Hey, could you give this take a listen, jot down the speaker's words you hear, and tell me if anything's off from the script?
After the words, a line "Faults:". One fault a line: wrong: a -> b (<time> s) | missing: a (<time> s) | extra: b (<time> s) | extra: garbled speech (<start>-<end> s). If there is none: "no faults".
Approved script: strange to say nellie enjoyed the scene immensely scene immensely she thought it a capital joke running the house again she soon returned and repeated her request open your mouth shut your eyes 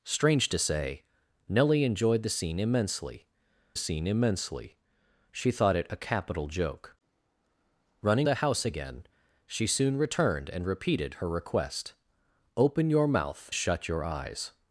strange to say nellie enjoyed the scene immensely scene immensely she thought it a capital joke running the house again she soon returned and repeated her request open your mouth shut your eyes
Faults:
no faults